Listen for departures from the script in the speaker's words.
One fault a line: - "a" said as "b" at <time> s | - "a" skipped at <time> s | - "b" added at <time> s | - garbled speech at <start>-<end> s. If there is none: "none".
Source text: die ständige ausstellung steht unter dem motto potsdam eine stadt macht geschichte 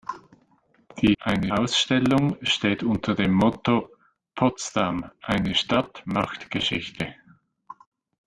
- "ständige" said as "eine" at 1.2 s